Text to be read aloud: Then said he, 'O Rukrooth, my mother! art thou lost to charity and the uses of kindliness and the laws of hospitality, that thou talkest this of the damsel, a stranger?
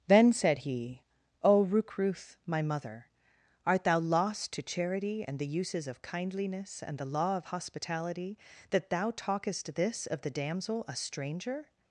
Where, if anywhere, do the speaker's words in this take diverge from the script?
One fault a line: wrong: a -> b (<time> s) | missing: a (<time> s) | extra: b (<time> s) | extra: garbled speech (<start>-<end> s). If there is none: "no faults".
wrong: laws -> law (7.0 s)